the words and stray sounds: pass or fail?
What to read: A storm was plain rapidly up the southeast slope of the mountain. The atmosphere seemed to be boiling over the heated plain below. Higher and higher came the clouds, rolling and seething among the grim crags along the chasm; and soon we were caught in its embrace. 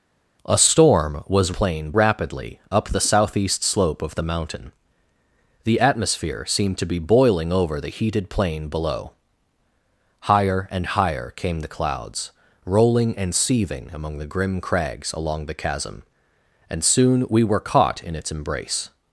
pass